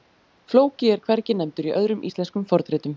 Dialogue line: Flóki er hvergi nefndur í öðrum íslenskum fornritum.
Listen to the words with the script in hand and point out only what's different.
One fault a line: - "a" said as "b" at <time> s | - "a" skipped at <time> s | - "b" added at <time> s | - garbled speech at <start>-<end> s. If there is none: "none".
none